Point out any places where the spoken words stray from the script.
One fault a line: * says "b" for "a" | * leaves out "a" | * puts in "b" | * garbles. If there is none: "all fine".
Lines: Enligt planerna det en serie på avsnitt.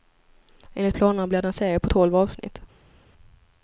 * puts in "blir"
* puts in "tolv"